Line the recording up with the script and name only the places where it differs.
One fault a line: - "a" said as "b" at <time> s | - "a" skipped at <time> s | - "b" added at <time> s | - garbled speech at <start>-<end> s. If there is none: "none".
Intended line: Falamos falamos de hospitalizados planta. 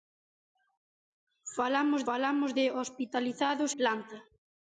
none